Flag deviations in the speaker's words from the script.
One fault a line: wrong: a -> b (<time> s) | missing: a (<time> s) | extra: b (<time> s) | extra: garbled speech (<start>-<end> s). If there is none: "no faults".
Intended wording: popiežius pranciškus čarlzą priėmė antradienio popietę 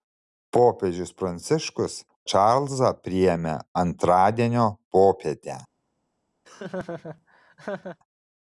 no faults